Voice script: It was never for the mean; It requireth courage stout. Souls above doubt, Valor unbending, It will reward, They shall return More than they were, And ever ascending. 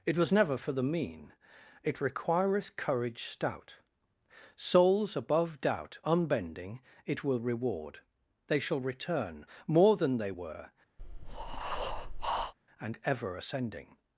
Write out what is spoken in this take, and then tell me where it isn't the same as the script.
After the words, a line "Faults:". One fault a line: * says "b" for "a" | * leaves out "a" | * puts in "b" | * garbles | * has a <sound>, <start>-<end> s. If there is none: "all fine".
It was never for the mean; It requireth courage stout. Souls above doubt, unbending, It will reward, They shall return More than they were, And ever ascending.
Faults:
* leaves out "Valor"
* has a breath, 11.0-12.5 s